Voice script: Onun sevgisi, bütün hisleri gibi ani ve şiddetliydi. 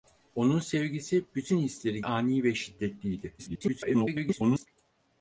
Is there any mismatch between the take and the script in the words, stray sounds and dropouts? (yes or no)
yes